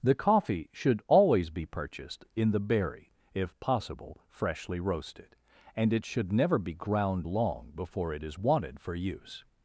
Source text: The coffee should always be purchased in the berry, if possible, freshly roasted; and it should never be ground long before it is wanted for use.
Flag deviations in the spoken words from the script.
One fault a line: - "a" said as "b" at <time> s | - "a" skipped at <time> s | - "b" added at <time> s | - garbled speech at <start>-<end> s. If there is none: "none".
none